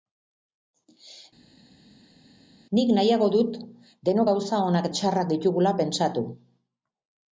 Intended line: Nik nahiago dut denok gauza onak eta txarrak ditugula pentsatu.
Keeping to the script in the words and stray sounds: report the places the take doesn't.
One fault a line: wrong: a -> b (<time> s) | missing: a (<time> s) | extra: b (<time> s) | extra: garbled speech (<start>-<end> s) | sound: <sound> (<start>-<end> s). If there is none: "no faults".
missing: eta (4.9 s)